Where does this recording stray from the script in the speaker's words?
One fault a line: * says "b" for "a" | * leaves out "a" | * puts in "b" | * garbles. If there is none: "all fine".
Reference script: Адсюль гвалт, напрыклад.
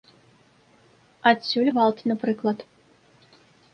all fine